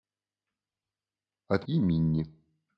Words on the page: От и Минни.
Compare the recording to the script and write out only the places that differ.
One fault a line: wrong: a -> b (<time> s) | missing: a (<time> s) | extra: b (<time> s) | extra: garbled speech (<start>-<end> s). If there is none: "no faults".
no faults